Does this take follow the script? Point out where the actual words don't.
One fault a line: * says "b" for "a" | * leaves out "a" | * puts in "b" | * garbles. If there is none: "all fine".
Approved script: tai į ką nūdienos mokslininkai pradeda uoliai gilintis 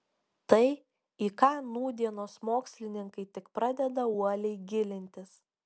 * puts in "tik"